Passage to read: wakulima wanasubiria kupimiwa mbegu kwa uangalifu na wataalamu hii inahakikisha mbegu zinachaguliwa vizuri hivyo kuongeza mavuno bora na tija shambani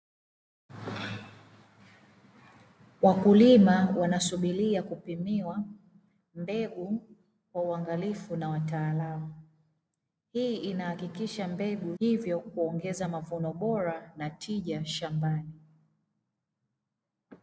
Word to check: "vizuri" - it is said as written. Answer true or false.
false